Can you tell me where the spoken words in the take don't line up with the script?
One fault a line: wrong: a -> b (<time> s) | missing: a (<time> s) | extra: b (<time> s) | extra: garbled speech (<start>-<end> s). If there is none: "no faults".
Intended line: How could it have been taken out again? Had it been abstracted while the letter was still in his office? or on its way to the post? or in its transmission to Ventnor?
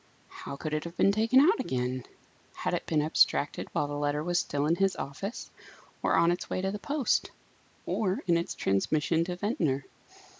no faults